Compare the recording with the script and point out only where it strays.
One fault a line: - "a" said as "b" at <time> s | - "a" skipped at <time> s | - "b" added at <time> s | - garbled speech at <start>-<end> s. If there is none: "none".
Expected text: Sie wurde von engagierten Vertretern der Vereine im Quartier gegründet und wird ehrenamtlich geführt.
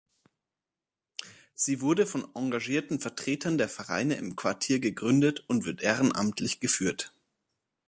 none